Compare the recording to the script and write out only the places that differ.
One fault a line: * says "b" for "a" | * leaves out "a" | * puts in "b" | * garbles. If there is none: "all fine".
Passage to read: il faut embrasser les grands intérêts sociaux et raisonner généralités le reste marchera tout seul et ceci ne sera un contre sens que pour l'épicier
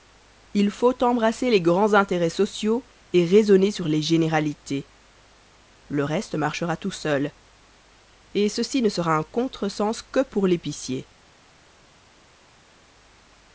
* puts in "sur les"